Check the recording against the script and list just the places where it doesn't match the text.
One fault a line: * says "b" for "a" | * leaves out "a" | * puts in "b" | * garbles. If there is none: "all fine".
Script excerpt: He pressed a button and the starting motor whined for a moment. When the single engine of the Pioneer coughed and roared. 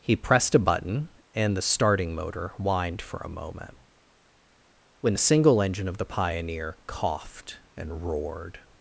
all fine